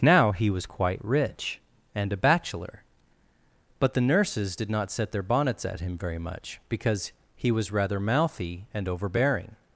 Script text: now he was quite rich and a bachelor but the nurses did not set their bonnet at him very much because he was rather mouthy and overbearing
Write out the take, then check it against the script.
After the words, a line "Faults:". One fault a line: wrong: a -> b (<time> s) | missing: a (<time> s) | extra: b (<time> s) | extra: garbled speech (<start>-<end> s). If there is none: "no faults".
now he was quite rich and a bachelor but the nurses did not set their bonnets at him very much because he was rather mouthy and overbearing
Faults:
wrong: bonnet -> bonnets (5.2 s)